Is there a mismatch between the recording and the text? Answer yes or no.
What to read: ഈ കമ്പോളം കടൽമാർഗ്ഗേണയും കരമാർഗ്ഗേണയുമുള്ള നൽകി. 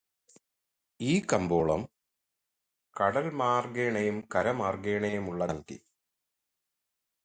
no